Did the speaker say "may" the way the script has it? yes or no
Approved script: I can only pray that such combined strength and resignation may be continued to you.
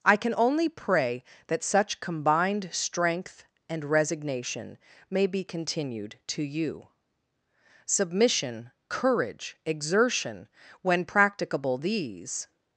yes